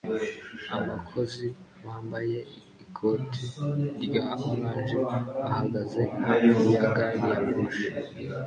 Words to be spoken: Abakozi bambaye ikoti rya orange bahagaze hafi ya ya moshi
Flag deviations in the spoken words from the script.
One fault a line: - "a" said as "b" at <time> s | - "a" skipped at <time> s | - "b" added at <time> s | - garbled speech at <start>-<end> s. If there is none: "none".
- "gari" added at 7.0 s